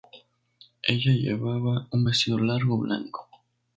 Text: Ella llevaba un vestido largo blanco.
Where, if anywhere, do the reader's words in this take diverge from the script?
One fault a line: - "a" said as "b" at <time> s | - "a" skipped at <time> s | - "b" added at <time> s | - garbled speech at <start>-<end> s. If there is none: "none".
none